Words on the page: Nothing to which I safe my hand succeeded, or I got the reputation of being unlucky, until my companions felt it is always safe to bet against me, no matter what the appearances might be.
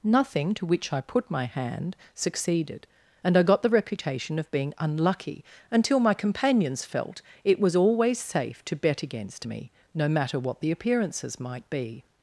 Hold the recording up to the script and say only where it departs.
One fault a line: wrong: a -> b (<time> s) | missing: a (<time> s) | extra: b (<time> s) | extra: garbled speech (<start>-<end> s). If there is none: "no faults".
wrong: safe -> put (1.0 s)
wrong: or -> and (3.2 s)
wrong: is -> was (7.6 s)